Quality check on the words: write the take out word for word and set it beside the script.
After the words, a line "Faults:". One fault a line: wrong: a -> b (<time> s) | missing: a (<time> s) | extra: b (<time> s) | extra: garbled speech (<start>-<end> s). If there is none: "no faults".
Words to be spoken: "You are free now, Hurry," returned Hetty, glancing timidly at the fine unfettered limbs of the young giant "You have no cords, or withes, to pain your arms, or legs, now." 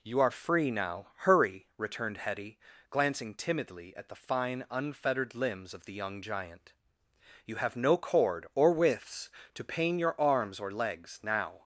"You are free now, Hurry," returned Hetty, glancing timidly at the fine unfettered limbs of the young giant "You have no cord, or withes, to pain your arms, or legs, now."
Faults:
wrong: cords -> cord (8.0 s)